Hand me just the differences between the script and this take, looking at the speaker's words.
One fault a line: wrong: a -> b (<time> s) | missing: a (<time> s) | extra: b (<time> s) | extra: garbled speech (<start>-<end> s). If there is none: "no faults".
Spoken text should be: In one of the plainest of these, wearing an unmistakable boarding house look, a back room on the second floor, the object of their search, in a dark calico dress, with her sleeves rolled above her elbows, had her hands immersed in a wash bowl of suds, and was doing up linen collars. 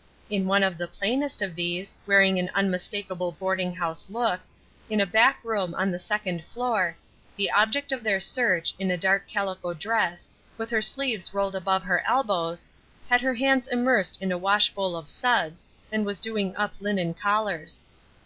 extra: in (4.9 s)